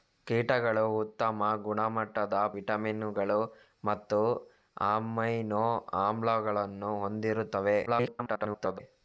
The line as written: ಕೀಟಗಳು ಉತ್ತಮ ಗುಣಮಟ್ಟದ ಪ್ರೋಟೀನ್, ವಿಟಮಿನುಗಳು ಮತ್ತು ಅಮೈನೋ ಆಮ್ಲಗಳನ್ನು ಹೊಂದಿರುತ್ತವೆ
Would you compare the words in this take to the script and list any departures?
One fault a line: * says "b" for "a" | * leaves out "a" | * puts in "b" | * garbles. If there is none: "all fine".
* leaves out "ಪ್ರೋಟೀನ್"
* garbles